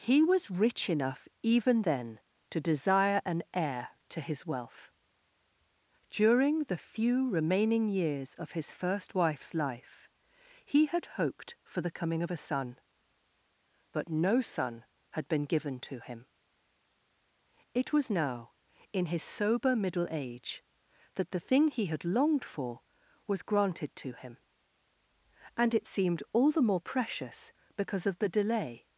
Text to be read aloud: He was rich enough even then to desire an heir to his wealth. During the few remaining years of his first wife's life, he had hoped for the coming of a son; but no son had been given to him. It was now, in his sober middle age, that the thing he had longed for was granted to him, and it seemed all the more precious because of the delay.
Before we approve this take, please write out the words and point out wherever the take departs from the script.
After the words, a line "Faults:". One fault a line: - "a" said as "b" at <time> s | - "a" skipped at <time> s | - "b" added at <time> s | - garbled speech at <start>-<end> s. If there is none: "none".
He was rich enough even then to desire an heir to his wealth. During the few remaining years of his first wife's life, he had hoped for the coming of a son; but no son had been given to him. It was now, in his sober middle age, that the thing he had longed for was granted to him, and it seemed all the more precious because of the delay.
Faults:
none